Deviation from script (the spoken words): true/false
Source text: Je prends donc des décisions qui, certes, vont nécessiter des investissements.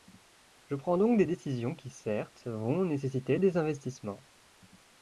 false